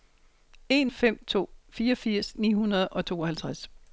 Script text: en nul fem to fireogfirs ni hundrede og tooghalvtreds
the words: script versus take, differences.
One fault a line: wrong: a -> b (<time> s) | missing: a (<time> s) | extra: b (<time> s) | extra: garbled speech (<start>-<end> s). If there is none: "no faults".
missing: nul (0.9 s)